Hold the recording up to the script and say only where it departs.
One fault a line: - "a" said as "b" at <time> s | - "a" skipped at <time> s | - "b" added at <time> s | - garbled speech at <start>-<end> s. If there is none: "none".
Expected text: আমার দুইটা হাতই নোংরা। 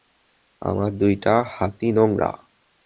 none